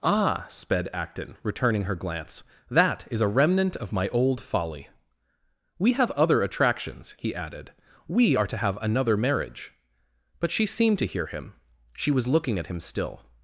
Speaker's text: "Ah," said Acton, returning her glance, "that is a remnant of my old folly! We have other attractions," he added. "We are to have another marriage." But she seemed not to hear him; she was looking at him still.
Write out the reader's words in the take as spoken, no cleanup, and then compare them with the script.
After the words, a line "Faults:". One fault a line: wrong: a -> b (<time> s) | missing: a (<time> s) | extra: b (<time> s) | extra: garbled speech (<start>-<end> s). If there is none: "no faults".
"Ah," sped Acton, returning her glance, "that is a remnant of my old folly! We have other attractions," he added. "We are to have another marriage." But she seemed to hear him; she was looking at him still.
Faults:
wrong: said -> sped (0.5 s)
missing: not (11.0 s)